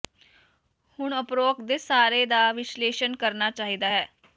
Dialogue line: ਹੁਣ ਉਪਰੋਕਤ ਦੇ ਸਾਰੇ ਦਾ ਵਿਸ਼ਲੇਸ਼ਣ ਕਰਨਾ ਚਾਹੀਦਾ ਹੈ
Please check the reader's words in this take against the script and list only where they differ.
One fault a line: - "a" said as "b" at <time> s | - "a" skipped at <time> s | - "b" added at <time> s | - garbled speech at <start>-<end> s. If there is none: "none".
none